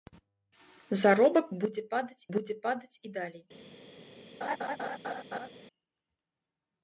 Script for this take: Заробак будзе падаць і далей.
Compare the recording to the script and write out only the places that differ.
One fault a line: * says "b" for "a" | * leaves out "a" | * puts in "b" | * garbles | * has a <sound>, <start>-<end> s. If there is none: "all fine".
* puts in "будзе падаць"
* has a laugh, 4.4-5.5 s